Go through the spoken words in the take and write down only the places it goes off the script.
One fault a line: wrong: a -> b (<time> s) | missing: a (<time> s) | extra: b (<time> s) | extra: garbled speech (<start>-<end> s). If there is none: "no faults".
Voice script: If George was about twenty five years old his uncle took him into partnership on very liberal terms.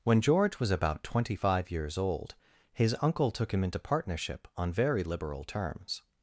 wrong: If -> When (0.0 s)